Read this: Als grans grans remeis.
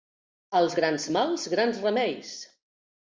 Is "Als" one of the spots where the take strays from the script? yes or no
no